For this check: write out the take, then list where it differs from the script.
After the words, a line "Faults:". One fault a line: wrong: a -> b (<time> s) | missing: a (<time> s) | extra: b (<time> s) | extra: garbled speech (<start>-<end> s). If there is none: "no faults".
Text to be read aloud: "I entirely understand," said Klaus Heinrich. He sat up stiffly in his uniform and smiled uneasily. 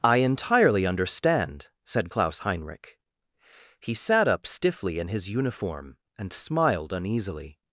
"I entirely understand," said Klaus Heinrich. He sat up stiffly in his uniform and smiled uneasily.
Faults:
no faults